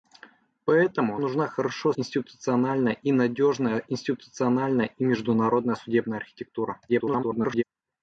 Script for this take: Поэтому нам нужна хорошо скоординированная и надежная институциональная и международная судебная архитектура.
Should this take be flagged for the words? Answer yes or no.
yes